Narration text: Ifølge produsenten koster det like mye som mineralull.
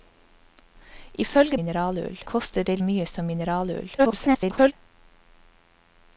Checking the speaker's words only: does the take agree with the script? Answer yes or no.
no